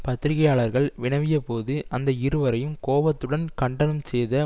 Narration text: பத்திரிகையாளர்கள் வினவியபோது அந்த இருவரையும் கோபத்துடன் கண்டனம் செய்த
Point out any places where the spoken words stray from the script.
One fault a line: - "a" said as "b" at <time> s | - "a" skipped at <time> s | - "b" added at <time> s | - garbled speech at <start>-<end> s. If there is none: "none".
none